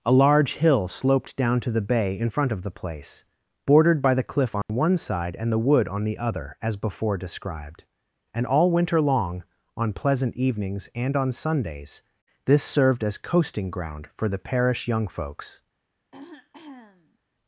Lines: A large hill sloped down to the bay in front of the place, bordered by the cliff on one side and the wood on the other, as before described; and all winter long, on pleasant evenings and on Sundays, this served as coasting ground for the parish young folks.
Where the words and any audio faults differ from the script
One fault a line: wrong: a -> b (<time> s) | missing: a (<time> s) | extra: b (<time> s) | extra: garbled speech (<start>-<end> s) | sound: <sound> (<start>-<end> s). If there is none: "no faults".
sound: dropout (4.6-4.7 s)
sound: throat clearing (16.1-17.2 s)